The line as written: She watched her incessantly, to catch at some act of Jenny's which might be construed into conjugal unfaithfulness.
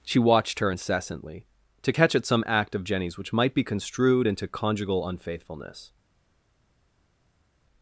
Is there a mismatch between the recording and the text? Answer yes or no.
no